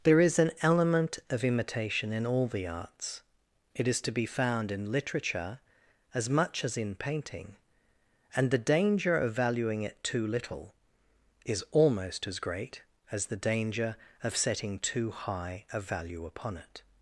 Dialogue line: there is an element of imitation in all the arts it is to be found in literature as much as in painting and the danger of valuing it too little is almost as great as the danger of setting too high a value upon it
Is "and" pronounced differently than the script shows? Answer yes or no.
no